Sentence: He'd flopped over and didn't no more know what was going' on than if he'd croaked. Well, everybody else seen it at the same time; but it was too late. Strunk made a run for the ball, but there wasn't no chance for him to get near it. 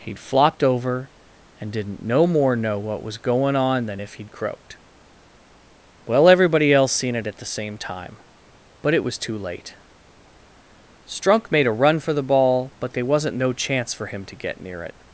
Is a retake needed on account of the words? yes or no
no